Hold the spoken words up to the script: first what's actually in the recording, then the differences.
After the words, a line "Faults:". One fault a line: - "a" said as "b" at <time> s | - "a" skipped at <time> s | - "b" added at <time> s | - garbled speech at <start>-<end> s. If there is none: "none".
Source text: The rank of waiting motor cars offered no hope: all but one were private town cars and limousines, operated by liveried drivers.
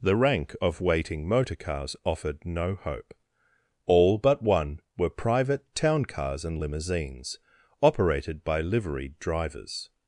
The rank of waiting motor cars offered no hope: all but one were private town cars and limousines, operated by liveried drivers.
Faults:
none